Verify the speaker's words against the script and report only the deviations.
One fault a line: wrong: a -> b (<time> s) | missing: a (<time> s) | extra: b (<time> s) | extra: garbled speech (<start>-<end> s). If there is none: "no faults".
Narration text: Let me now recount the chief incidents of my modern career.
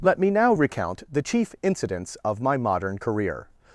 no faults